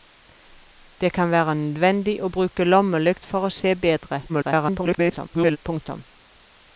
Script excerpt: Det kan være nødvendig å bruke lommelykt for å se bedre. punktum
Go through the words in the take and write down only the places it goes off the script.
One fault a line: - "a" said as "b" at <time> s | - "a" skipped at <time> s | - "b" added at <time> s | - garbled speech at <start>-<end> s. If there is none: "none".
- garbled speech at 4.3-5.6 s